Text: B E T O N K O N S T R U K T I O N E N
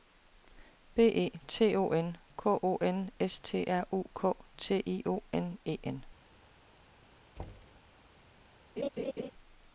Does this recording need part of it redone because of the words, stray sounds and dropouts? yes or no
yes